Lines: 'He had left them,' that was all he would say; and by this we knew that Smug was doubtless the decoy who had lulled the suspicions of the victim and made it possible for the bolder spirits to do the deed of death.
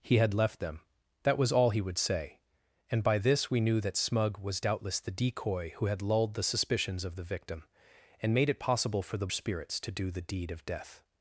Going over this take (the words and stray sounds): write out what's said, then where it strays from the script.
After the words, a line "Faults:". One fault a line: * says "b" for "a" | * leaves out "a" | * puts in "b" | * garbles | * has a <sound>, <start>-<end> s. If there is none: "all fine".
'He had left them,' that was all he would say; and by this we knew that Smug was doubtless the decoy who had lulled the suspicions of the victim and made it possible for the spirits to do the deed of death.
Faults:
* leaves out "bolder"